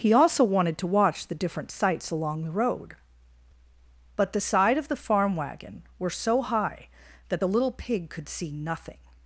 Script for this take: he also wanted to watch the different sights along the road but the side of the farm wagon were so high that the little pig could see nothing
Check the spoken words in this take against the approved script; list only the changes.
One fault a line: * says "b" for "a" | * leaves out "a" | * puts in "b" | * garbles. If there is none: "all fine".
all fine